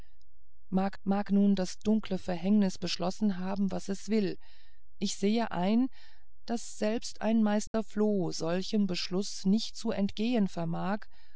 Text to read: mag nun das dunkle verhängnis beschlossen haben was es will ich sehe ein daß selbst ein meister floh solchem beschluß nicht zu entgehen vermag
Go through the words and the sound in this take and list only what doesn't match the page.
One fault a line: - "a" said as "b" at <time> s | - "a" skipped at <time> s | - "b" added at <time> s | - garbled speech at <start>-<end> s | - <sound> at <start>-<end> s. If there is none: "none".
- "mag" added at 1.0 s
- dropout at 7.7-7.7 s